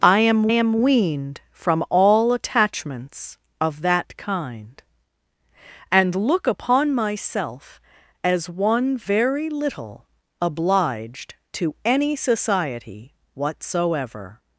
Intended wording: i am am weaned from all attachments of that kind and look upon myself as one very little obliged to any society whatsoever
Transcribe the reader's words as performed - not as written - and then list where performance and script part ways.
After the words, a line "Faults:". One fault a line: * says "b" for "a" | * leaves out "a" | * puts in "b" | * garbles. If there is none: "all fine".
i am am weaned from all attachments of that kind and look upon myself as one very little obliged to any society whatsoever
Faults:
all fine